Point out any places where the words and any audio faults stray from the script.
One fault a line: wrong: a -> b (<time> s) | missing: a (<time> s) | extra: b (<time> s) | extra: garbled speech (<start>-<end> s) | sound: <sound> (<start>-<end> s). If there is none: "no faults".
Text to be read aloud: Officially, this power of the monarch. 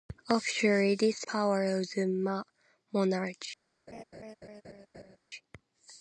sound: laugh (3.9-5.2 s)